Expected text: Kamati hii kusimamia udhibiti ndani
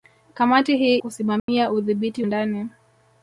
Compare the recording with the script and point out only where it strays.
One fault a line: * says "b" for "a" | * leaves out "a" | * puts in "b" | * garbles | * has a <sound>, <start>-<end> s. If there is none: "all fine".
* has a dropout, 1.4-1.5 s